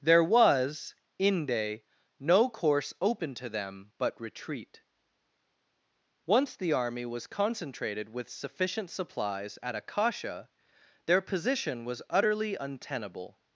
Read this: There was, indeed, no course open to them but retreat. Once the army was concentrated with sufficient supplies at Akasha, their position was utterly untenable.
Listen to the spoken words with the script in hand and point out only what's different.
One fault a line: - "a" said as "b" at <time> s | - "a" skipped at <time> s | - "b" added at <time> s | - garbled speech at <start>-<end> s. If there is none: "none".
- "indeed" said as "inde" at 1.2 s